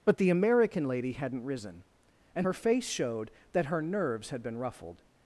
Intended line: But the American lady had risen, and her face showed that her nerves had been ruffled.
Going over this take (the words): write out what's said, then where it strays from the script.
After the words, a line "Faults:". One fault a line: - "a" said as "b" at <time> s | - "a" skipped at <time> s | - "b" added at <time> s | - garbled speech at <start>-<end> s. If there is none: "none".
But the American lady hadn't risen, and her face showed that her nerves had been ruffled.
Faults:
- "had" said as "hadn't" at 1.1 s